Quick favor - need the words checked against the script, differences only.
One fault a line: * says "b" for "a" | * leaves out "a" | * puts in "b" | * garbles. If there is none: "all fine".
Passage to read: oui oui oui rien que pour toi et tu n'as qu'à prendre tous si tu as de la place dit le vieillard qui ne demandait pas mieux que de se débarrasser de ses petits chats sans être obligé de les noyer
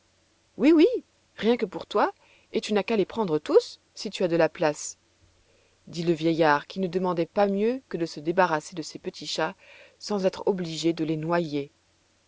* leaves out "oui"
* puts in "les"